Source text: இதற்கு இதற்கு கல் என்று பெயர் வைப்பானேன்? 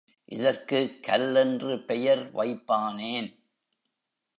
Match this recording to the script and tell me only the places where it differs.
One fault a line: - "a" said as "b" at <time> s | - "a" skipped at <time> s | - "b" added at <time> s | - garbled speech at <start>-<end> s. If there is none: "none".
- "இதற்கு" skipped at 1.0 s